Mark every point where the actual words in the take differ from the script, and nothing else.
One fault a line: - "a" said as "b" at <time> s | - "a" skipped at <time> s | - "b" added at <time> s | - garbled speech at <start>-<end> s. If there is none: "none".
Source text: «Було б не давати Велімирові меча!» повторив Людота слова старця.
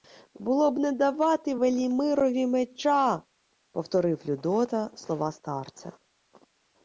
none